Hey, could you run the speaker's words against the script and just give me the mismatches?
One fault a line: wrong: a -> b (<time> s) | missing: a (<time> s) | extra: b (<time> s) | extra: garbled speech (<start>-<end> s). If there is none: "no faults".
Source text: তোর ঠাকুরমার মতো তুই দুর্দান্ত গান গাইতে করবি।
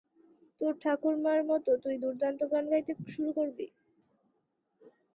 extra: শুরু (3.1 s)